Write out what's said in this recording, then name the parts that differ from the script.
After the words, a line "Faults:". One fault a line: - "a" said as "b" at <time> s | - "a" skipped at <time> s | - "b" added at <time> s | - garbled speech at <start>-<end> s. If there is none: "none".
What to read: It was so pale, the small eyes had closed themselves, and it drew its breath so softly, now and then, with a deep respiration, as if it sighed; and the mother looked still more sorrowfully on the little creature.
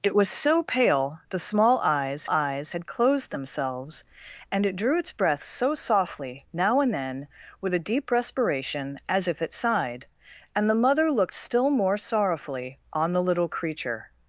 It was so pale, the small eyes eyes had closed themselves, and it drew its breath so softly, now and then, with a deep respiration, as if it sighed; and the mother looked still more sorrowfully on the little creature.
Faults:
- "eyes" added at 2.2 s